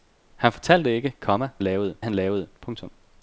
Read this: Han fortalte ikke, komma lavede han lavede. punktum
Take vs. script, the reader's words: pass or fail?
pass